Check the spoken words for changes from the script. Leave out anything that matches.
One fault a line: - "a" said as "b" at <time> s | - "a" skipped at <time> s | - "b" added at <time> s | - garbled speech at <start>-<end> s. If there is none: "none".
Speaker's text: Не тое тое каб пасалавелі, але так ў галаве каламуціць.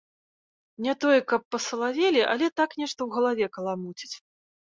- "тое" skipped at 1.2 s
- "нешта" added at 2.8 s